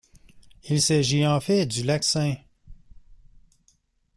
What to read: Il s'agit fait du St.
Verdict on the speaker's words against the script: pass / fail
fail